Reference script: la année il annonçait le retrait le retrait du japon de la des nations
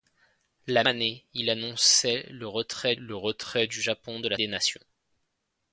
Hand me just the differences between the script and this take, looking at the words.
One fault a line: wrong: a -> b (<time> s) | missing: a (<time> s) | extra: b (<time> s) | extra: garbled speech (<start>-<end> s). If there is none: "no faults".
no faults